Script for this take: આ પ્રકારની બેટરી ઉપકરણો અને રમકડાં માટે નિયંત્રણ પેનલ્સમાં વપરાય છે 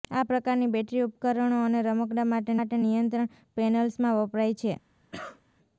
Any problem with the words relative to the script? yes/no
yes